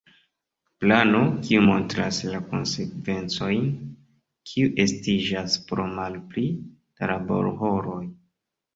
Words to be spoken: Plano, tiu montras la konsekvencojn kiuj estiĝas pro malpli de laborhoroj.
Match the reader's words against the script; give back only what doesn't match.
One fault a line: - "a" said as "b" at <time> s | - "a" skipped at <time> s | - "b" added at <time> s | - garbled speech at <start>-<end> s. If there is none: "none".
- "tiu" said as "kiu" at 1.5 s
- "de" said as "da" at 6.6 s